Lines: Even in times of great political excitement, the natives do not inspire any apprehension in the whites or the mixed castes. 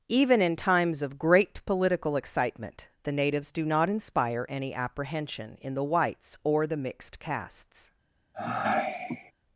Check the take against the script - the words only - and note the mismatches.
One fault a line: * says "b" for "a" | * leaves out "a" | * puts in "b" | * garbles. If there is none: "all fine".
all fine